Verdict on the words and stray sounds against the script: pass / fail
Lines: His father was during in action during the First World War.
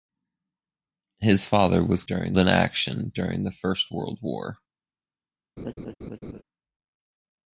fail